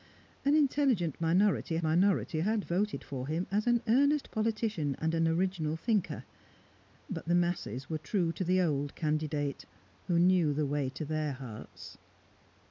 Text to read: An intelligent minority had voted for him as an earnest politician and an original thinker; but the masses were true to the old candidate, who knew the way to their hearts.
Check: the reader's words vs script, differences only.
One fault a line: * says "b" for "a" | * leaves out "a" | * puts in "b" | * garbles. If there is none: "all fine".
* puts in "minority"